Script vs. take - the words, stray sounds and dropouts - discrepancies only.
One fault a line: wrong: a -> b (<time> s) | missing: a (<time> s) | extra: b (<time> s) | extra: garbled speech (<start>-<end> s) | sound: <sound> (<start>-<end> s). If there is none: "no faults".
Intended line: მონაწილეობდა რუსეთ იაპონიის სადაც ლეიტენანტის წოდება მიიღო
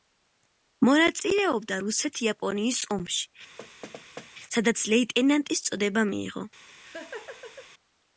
extra: ომში (3.0 s)
sound: thud (3.6-4.3 s)
sound: laugh (6.7-7.7 s)